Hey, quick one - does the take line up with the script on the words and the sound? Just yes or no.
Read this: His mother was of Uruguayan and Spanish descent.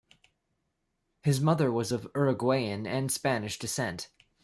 yes